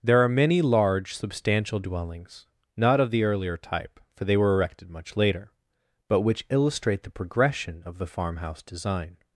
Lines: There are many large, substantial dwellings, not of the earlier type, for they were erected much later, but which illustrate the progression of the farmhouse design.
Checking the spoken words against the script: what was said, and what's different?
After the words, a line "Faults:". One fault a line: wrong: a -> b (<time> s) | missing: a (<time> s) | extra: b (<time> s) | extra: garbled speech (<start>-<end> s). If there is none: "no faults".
There are many large, substantial dwellings, not of the earlier type, for they were erected much later, but which illustrate the progression of the farmhouse design.
Faults:
no faults